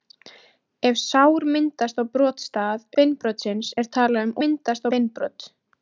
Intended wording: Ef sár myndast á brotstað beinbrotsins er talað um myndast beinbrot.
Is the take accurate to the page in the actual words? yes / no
yes